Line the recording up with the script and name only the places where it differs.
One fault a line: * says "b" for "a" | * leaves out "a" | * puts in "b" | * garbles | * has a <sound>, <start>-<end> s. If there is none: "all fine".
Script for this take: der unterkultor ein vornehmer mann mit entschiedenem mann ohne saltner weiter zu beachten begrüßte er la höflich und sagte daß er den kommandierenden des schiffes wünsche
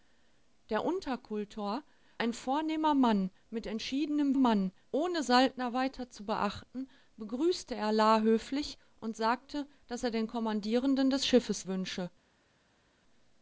all fine